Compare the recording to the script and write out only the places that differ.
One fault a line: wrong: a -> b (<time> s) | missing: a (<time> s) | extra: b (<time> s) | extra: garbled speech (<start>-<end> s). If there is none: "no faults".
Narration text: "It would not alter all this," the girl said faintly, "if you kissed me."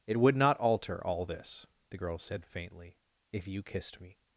no faults